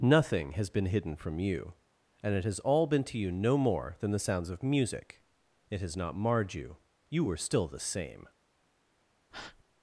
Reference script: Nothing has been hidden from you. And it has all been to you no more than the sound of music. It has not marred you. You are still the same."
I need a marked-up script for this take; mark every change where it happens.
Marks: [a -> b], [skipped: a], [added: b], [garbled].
Nothing has been hidden from you. And it has all been to you no more than the [sound -> sounds] of music. It has not marred you. You [are -> were] still the same."